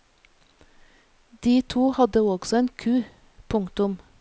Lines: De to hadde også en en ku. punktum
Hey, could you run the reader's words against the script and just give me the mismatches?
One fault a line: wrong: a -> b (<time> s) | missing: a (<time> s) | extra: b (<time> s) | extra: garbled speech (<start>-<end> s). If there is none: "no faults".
missing: en (2.7 s)